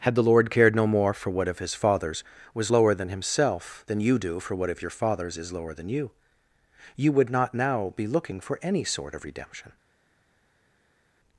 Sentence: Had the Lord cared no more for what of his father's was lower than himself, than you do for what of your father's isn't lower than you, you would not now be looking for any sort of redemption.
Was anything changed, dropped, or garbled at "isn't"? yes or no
yes